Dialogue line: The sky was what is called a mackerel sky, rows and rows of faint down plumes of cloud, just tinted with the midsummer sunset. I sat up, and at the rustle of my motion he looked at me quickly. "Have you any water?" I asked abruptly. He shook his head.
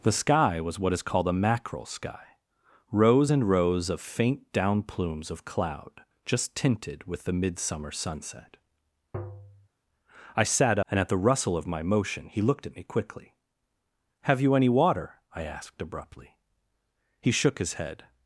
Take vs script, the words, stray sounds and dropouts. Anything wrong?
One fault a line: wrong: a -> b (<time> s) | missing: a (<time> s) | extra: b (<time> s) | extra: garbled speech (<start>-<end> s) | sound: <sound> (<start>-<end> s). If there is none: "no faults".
sound: tap (9.1-9.7 s)
missing: up (10.8 s)